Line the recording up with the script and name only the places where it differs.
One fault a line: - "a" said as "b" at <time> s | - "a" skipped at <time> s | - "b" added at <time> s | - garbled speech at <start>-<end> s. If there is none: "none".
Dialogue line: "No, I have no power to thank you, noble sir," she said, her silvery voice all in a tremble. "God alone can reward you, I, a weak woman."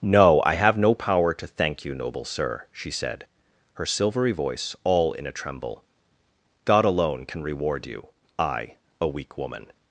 none